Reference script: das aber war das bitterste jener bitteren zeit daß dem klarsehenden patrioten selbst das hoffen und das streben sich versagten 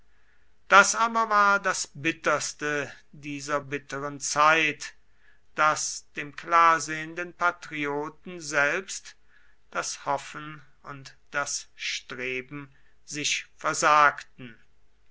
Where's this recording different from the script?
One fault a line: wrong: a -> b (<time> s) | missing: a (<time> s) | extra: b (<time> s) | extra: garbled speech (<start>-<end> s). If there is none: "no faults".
wrong: jener -> dieser (3.1 s)